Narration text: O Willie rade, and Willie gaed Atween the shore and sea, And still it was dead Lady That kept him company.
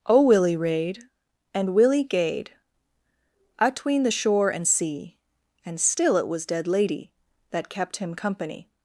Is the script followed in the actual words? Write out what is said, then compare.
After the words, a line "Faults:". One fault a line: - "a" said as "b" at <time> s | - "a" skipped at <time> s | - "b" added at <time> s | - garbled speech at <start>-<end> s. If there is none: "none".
O Willie rade, and Willie gaed Atween the shore and sea, And still it was dead Lady That kept him company.
Faults:
none